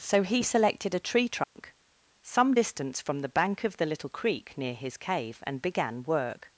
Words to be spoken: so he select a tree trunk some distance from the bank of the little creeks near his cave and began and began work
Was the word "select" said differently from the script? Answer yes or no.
yes